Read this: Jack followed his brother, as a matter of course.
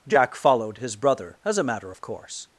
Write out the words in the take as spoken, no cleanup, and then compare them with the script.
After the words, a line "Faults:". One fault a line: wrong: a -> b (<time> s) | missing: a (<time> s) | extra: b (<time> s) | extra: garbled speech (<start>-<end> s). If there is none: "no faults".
Jack followed his brother, as a matter of course.
Faults:
no faults